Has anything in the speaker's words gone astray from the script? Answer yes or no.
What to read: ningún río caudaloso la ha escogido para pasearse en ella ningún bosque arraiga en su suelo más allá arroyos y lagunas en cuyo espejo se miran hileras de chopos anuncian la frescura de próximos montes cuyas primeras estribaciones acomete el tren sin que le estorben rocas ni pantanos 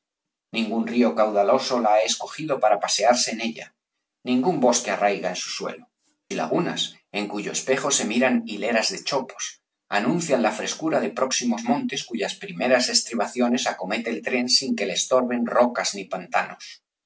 yes